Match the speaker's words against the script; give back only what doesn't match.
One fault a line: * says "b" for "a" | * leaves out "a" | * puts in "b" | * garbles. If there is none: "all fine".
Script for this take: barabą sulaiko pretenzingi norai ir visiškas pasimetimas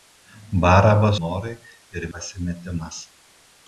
* leaves out "sulaiko pretenzingi"
* leaves out "visiškas"